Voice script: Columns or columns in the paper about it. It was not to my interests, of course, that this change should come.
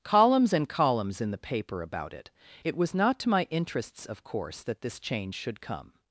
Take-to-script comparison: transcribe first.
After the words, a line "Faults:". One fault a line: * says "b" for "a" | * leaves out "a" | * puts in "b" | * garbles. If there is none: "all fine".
Columns and columns in the paper about it. It was not to my interests, of course, that this change should come.
Faults:
* says "and" for "or"